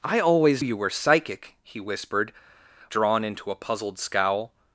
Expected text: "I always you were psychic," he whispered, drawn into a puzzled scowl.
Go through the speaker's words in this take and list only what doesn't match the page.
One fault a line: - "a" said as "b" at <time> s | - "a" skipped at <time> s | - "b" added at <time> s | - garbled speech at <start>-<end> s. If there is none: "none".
none